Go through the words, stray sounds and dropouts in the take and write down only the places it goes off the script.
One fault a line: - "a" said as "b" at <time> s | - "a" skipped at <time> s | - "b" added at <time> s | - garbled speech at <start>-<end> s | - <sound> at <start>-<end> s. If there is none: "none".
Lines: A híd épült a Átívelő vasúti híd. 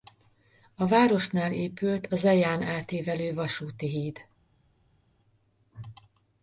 - "híd" said as "városnál" at 0.9 s
- "Zeján" added at 2.2 s